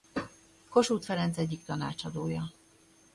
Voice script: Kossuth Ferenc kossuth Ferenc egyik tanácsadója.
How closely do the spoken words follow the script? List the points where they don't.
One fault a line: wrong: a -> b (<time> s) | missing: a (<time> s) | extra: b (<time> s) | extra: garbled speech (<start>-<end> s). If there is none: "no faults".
missing: kossuth Ferenc (1.4 s)